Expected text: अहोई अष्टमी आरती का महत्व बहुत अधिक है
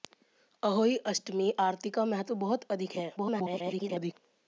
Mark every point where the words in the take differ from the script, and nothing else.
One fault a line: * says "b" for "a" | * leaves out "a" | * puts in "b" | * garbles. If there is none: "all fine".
* garbles